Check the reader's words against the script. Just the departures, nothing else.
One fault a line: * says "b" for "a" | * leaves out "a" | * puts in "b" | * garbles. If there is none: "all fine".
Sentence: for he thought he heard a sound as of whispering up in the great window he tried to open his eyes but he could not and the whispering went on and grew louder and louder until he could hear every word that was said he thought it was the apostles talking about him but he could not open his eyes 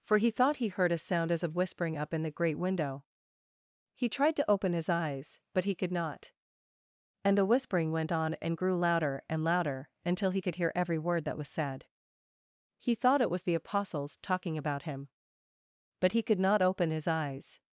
all fine